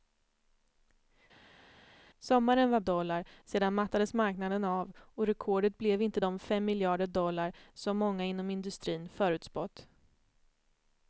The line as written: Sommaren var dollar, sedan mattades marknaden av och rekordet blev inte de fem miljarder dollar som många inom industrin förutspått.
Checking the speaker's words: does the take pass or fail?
pass